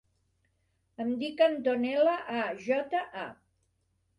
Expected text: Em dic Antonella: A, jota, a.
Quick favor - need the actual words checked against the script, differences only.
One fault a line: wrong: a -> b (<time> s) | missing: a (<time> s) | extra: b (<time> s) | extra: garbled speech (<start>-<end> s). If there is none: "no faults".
no faults